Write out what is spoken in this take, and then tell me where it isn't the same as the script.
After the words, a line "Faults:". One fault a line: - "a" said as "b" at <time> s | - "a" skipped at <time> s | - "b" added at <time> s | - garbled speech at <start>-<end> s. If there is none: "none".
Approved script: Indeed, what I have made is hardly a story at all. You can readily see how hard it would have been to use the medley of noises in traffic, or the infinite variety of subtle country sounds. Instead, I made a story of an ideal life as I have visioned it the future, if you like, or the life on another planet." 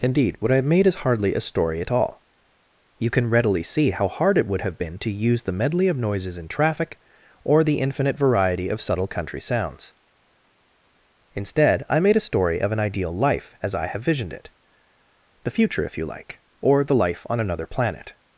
Indeed, what I have made is hardly a story at all. You can readily see how hard it would have been to use the medley of noises in traffic, or the infinite variety of subtle country sounds. Instead, I made a story of an ideal life as I have visioned it the future, if you like, or the life on another planet."
Faults:
none